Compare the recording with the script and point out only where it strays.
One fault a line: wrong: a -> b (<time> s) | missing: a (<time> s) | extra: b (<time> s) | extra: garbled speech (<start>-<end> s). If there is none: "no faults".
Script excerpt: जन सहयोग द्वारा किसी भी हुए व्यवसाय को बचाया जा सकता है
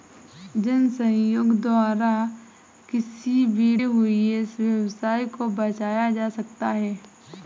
no faults